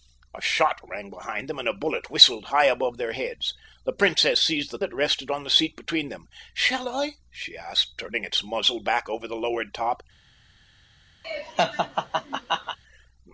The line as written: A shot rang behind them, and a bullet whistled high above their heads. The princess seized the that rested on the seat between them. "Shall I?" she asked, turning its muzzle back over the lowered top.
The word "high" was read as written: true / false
true